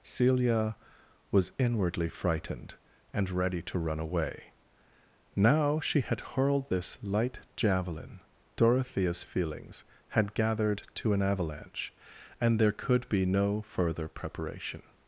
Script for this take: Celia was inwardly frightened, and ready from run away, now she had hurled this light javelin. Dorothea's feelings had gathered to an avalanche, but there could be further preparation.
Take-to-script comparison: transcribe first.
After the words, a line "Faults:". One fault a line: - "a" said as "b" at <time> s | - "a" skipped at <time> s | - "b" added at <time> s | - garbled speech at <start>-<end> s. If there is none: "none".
Celia was inwardly frightened, and ready to run away, now she had hurled this light javelin. Dorothea's feelings had gathered to an avalanche, and there could be no further preparation.
Faults:
- "from" said as "to" at 3.6 s
- "but" said as "and" at 12.4 s
- "no" added at 13.2 s